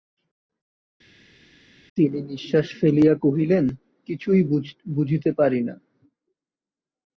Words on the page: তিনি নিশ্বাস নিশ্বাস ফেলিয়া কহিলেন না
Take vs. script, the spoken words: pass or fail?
fail